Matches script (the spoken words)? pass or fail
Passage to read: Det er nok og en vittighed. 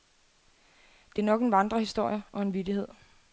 fail